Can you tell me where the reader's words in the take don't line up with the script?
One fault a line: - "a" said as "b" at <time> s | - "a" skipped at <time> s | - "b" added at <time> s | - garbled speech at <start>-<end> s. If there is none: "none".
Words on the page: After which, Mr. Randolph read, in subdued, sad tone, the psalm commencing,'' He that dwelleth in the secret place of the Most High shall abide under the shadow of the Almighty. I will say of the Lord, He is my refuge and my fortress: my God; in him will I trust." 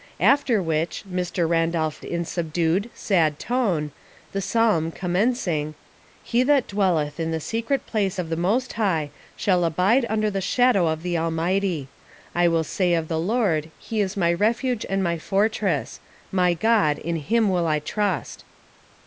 - "read" skipped at 2.0 s